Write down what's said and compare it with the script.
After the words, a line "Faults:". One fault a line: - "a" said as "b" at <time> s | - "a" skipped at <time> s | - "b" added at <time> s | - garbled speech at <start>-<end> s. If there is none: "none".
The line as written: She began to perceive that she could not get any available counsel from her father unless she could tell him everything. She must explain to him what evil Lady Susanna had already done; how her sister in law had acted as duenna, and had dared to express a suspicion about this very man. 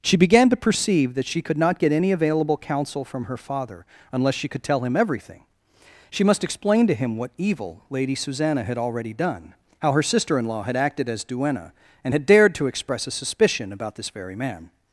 She began to perceive that she could not get any available counsel from her father unless she could tell him everything. She must explain to him what evil Lady Susanna had already done; how her sister in law had acted as duenna, and had dared to express a suspicion about this very man.
Faults:
none